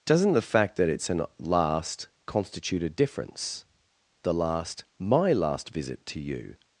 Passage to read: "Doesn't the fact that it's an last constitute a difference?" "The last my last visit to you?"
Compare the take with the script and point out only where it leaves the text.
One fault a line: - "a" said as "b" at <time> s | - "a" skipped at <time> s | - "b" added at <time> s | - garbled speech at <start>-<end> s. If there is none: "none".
none